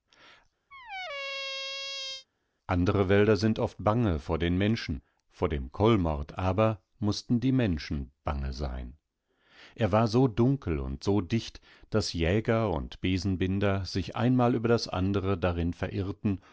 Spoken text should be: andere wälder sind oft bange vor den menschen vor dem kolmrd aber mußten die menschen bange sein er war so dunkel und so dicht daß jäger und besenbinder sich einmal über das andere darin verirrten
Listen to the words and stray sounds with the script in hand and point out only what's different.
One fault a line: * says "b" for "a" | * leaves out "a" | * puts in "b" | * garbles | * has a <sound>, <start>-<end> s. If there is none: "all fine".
* has a squeak, 0.7-2.3 s